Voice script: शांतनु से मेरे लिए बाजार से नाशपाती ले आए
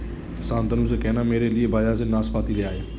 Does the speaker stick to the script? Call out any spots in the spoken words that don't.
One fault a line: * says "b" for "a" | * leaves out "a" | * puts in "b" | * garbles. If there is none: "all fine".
* puts in "कहना"